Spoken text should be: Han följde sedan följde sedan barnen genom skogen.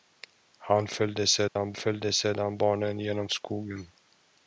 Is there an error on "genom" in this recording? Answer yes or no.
no